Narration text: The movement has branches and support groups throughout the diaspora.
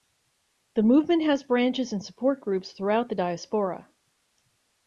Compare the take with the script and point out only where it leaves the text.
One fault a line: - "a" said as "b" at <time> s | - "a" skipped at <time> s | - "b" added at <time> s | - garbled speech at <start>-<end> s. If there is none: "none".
none